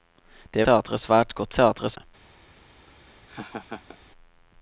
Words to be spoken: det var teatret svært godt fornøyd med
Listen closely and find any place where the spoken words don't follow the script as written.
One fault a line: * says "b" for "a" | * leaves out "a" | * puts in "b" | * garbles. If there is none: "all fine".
* leaves out "var"
* says "teatret" for "fornøyd"